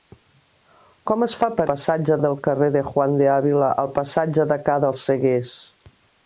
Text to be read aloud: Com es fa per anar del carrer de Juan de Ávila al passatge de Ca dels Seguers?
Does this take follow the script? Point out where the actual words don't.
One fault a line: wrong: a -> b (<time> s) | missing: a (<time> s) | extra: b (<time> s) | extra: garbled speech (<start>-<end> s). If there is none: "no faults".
wrong: anar -> passatge (1.7 s)